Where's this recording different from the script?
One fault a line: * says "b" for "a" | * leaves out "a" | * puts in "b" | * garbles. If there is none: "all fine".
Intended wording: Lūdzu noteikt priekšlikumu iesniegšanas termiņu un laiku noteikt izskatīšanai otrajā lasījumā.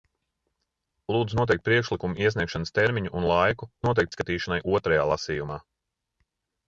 all fine